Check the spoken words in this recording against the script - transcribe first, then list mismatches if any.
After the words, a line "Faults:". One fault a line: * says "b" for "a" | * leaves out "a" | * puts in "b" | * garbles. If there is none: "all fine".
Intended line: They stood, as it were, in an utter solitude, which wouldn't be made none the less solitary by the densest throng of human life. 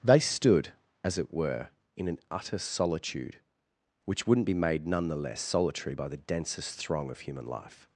They stood, as it were, in an utter solitude, which wouldn't be made none the less solitary by the densest throng of human life.
Faults:
all fine